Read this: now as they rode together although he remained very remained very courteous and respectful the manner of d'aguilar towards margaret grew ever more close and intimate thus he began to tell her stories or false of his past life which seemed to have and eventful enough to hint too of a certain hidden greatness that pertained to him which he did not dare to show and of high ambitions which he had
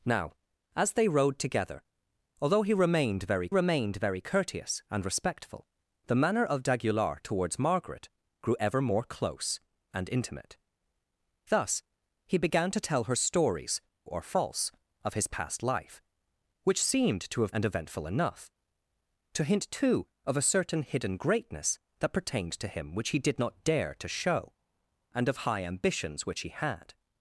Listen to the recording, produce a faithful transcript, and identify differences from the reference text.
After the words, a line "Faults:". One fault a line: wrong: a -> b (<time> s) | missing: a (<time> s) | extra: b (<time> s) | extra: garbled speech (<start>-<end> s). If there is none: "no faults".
now as they rode together although he remained very remained very courteous and respectful the manner of d'aguilar towards margaret grew ever more close and intimate thus he began to tell her stories or false of his past life which seemed to have and eventful enough to hint too of a certain hidden greatness that pertained to him which he did not dare to show and of high ambitions which he had
Faults:
no faults